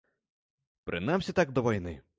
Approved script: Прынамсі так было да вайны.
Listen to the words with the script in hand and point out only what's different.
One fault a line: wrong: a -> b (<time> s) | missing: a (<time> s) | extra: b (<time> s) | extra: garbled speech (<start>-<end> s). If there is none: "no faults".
missing: было (1.5 s)